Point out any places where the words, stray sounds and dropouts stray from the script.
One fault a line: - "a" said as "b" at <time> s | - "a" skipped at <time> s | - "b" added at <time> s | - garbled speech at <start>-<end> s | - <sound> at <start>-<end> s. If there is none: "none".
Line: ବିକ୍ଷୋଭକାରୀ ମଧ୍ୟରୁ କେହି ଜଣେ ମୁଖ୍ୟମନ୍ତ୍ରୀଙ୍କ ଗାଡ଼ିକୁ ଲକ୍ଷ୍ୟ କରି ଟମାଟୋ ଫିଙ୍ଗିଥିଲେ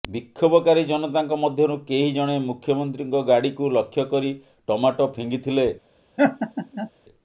- "ଜନତାଙ୍କ" added at 0.8 s
- laugh at 6.2-6.9 s